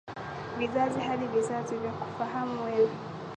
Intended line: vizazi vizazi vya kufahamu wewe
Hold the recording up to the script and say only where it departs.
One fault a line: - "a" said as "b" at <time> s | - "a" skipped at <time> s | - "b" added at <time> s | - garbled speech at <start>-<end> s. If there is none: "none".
- "hadi" added at 1.0 s